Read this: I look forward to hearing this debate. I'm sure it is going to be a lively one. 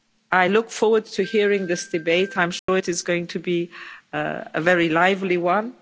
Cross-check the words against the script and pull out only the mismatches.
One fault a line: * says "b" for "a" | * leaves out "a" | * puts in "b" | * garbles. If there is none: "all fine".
* puts in "very"